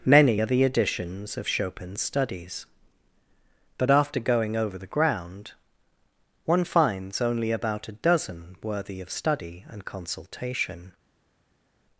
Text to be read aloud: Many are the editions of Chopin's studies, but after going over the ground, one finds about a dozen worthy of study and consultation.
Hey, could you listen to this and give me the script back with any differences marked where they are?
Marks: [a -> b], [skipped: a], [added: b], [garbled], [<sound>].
Many are the editions of Chopin's studies, but after going over the ground, one finds [added: only] about a dozen worthy of study and consultation.